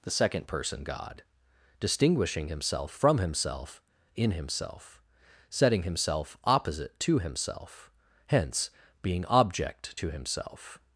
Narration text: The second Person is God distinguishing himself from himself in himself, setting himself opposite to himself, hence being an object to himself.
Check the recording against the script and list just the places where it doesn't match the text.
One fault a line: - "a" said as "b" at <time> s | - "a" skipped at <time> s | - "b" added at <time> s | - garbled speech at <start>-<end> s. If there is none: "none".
- "is" skipped at 0.8 s
- "an" skipped at 9.2 s